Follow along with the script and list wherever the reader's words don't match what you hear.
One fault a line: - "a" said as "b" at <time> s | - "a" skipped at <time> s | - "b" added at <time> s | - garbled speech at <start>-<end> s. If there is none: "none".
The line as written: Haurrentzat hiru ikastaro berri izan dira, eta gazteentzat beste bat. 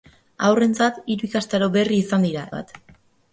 - "eta gazteentzat beste" skipped at 2.5 s